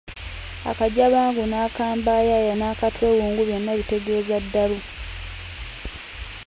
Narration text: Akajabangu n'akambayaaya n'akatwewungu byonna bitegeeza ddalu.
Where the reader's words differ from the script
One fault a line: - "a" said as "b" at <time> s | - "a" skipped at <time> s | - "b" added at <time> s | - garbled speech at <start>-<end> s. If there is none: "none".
none